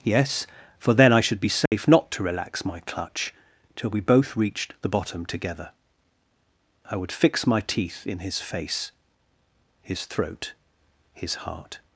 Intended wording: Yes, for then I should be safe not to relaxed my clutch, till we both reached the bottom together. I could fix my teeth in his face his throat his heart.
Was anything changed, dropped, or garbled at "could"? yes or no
yes